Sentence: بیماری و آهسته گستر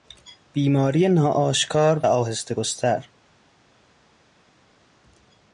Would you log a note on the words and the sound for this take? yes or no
yes